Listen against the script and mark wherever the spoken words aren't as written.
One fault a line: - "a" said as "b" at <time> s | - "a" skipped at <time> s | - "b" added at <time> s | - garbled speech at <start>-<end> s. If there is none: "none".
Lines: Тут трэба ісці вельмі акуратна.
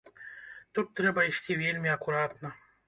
none